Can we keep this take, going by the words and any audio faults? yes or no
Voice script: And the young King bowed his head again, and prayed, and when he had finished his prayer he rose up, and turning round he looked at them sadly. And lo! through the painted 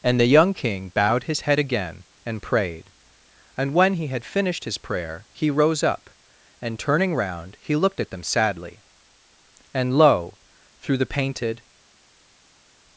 yes